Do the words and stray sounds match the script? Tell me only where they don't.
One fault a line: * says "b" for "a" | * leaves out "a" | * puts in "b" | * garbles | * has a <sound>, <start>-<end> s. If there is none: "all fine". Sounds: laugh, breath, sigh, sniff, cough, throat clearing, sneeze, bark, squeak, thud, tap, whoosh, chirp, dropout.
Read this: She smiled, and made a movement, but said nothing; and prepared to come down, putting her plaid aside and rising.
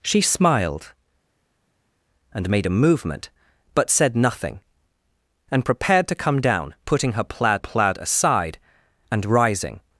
* puts in "plaid"